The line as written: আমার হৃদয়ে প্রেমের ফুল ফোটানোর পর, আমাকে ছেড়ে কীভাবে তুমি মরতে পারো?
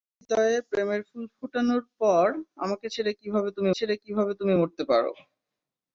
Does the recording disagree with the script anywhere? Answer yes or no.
yes